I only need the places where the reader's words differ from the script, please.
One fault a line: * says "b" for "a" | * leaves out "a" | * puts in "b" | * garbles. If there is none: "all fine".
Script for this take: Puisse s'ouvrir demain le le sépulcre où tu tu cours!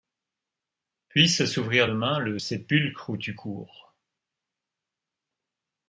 * leaves out "le"
* leaves out "tu"